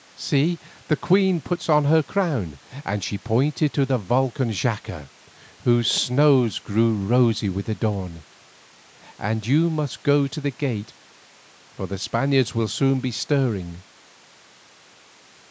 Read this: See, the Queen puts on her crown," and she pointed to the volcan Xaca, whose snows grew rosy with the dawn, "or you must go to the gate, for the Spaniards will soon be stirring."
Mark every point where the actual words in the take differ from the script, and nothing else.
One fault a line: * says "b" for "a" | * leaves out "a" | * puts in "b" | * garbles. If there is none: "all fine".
* says "and" for "or"